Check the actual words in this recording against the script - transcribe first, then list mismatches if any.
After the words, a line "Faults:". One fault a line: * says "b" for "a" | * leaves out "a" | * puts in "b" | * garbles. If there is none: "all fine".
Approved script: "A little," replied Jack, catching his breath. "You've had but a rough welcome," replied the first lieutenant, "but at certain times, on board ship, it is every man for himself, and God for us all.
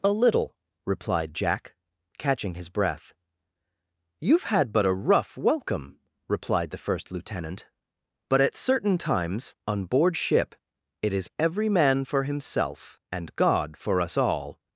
"A little," replied Jack, catching his breath. "You've had but a rough welcome," replied the first lieutenant, "but at certain times, on board ship, it is every man for himself, and God for us all.
Faults:
all fine